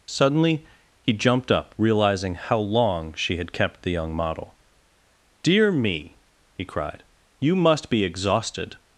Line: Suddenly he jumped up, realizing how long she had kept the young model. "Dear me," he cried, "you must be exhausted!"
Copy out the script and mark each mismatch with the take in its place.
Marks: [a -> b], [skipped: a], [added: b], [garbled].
Suddenly he jumped up, realizing how long she had kept the young model. "Dear me," he cried, "you must be exhausted!"